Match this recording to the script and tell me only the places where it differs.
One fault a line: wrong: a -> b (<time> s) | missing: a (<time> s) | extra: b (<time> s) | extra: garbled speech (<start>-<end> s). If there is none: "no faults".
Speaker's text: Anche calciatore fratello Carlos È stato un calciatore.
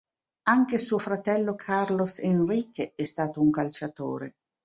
wrong: calciatore -> suo (0.8 s)
extra: Enrique (2.2 s)